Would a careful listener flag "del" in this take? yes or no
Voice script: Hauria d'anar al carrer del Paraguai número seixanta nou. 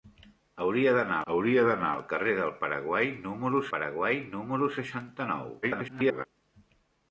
no